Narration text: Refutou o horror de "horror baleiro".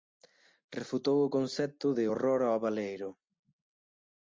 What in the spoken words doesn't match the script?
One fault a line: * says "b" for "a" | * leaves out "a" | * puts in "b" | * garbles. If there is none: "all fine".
* says "concepto" for "horror"
* puts in "ao"